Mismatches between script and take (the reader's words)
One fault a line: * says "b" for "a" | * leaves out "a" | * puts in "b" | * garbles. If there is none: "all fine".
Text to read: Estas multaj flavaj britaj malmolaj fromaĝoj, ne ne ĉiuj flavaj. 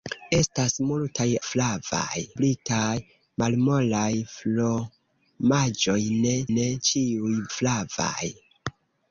all fine